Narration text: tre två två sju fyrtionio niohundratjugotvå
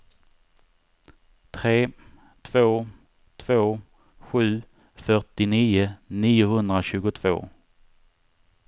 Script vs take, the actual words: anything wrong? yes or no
no